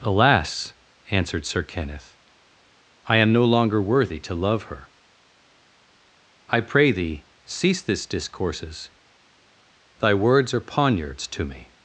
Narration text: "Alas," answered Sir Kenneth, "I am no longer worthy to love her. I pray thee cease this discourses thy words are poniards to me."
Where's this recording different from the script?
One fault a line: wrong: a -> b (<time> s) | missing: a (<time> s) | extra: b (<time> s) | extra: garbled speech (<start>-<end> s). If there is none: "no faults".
no faults